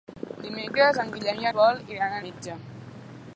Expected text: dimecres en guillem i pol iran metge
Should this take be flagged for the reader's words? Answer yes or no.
no